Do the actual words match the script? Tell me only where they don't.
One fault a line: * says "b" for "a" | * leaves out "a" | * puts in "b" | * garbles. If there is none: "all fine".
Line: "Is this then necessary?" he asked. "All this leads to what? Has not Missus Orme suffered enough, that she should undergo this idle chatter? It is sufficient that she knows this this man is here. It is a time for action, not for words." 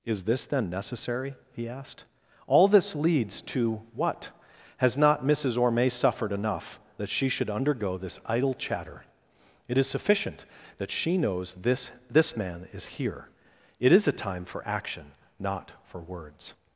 all fine